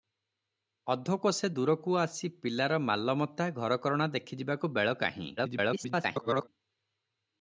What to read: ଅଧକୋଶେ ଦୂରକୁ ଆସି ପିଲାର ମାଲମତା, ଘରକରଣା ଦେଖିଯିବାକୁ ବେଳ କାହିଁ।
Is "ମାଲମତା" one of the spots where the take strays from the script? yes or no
no